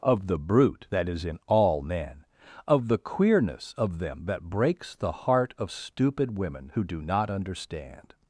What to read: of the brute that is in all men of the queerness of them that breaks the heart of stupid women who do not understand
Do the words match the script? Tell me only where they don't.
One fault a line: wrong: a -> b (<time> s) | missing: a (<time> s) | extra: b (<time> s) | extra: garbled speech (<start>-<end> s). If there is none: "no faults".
no faults